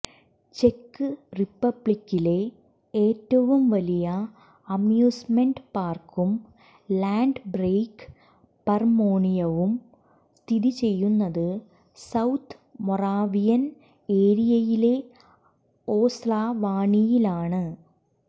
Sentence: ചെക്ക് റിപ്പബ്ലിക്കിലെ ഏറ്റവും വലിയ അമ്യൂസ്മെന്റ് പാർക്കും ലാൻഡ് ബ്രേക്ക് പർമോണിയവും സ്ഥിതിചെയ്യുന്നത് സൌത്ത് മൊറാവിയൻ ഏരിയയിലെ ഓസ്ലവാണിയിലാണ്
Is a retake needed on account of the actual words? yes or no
no